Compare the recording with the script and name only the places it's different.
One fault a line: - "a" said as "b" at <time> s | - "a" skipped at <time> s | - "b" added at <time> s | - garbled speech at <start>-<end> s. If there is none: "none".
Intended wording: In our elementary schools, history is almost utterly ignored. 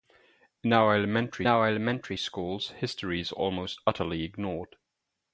- "our elementary" added at 1.5 s